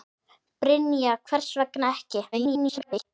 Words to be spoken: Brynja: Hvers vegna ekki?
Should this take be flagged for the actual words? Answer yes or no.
yes